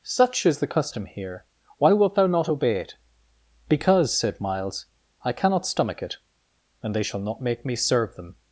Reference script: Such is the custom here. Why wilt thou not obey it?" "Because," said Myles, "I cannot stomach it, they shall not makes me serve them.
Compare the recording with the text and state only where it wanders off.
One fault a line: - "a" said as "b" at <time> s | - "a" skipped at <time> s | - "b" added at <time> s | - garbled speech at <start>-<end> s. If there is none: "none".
- "and" added at 6.8 s
- "makes" said as "make" at 7.4 s